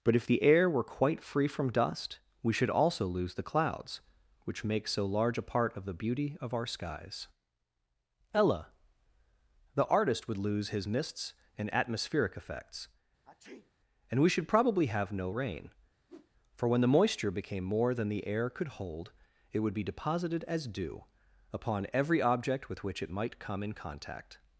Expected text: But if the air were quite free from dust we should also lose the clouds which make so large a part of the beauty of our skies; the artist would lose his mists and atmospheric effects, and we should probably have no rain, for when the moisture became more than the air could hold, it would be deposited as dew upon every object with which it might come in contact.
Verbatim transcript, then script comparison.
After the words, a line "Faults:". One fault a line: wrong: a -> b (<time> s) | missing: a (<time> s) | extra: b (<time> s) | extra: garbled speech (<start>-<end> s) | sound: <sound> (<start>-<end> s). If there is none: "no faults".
But if the air were quite free from dust we should also lose the clouds which make so large a part of the beauty of our skies; ella the artist would lose his mists and atmospheric effects, and we should probably have no rain, for when the moisture became more than the air could hold, it would be deposited as dew upon every object with which it might come in contact.
Faults:
extra: ella (8.3 s)
sound: sneeze (13.3-13.7 s)
sound: whoosh (16.1-16.3 s)